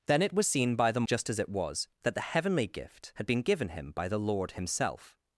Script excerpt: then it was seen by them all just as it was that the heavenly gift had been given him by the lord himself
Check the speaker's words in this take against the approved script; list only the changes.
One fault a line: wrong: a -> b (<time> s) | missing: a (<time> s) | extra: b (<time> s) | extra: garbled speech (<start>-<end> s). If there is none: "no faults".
missing: all (1.1 s)